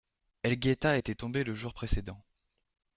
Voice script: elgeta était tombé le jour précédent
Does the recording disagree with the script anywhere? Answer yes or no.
no